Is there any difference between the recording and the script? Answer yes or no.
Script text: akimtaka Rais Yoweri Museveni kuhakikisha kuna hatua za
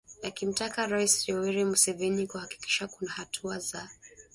no